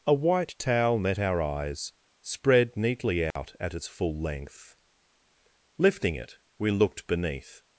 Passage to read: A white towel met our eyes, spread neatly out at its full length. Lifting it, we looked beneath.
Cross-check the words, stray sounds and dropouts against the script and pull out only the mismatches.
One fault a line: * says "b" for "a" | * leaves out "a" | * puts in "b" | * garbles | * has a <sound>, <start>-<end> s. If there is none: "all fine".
* has a dropout, 3.3-3.4 s